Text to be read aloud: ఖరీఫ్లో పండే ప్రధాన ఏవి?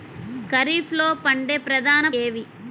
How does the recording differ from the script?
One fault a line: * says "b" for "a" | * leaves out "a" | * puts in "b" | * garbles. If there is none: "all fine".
all fine